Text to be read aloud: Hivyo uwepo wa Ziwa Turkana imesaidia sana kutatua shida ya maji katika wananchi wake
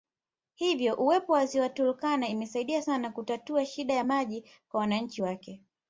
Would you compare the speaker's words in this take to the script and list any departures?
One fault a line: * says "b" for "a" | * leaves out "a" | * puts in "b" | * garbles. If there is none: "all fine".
* says "kwa" for "katika"